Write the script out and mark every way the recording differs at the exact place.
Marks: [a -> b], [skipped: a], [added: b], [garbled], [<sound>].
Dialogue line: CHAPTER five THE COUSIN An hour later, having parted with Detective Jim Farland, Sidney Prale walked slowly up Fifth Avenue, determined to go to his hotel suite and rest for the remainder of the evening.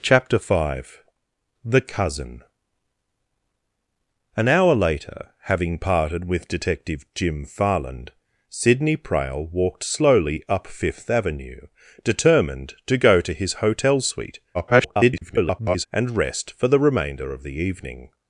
CHAPTER five THE COUSIN An hour later, having parted with Detective Jim Farland, Sidney Prale walked slowly up Fifth Avenue, determined to go to his hotel suite [garbled] and rest for the remainder of the evening.